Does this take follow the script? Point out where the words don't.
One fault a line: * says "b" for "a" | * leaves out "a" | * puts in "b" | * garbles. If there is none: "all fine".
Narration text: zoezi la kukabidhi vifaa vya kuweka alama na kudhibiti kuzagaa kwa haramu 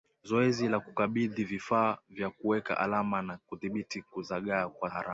all fine